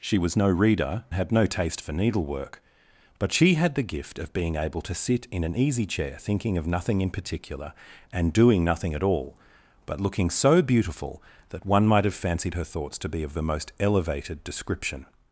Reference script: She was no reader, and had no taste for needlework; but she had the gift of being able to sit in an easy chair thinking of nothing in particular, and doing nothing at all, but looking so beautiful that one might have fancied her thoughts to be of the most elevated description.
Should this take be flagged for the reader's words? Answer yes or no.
yes